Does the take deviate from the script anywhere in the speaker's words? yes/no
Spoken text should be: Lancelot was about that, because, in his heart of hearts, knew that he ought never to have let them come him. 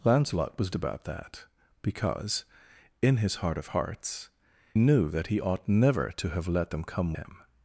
no